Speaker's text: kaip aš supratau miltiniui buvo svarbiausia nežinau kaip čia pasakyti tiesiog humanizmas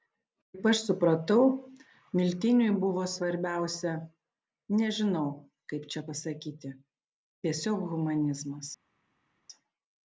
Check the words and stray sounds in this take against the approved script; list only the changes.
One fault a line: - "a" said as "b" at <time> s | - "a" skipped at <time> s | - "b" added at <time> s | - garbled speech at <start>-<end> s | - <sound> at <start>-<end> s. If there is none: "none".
none